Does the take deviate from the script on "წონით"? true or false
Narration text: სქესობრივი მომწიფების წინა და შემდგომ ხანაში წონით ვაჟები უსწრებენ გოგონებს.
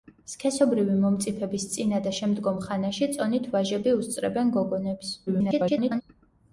false